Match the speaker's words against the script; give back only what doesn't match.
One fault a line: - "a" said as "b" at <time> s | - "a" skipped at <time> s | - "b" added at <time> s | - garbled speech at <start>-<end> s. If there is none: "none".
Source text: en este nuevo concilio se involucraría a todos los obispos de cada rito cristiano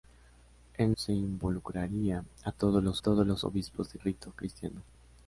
- "este nuevo concilio" skipped at 0.9 s
- "todos los" added at 3.0 s
- "cada" skipped at 4.0 s